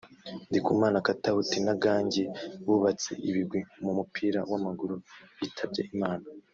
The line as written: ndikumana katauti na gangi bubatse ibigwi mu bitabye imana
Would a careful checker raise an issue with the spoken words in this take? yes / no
yes